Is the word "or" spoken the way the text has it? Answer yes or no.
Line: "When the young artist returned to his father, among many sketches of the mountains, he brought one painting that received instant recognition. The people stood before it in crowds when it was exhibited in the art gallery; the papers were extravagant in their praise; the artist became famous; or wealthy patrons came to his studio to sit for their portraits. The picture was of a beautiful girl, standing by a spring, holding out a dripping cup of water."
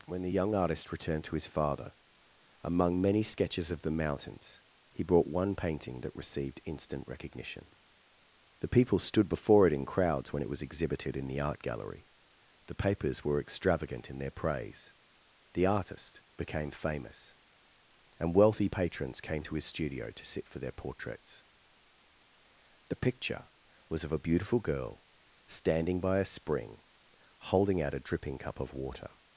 no